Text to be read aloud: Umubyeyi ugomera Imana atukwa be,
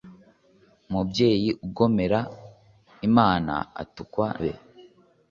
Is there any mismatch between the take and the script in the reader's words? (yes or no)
no